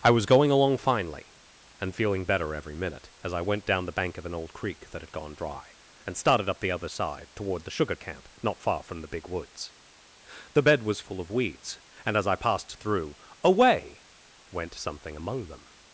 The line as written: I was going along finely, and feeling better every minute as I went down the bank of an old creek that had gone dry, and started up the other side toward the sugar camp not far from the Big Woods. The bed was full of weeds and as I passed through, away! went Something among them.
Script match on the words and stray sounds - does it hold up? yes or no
yes